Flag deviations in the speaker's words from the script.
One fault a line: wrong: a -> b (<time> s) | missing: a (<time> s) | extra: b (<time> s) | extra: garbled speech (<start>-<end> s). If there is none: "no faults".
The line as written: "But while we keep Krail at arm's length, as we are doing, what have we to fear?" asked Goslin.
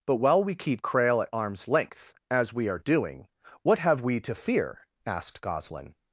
no faults